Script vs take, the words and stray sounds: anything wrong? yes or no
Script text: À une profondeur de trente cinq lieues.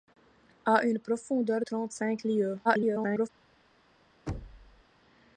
yes